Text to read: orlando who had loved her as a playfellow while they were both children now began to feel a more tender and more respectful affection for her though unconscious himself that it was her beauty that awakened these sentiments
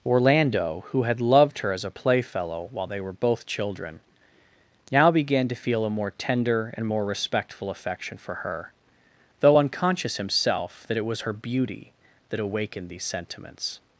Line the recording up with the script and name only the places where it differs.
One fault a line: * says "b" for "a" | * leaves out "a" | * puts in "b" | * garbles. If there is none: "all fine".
all fine